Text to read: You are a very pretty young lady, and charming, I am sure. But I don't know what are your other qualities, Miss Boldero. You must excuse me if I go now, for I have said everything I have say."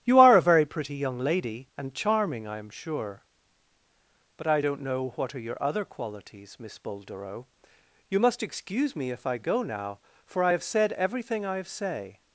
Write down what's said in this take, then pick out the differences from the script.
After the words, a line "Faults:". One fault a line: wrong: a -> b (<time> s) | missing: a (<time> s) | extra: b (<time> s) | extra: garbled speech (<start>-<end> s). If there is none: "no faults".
You are a very pretty young lady, and charming, I am sure. But I don't know what are your other qualities, Miss Boldero. You must excuse me if I go now, for I have said everything I have say."
Faults:
no faults